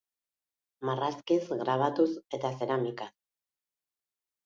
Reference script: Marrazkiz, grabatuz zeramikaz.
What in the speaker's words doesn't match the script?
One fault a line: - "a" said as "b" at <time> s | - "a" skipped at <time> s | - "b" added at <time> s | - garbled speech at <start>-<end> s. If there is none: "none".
- "eta" added at 2.4 s